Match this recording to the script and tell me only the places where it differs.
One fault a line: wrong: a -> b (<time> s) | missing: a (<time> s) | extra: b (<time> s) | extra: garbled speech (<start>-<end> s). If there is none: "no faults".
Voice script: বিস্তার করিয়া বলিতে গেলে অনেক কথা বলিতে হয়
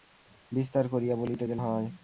missing: অনেক কথা বলিতে (1.6 s)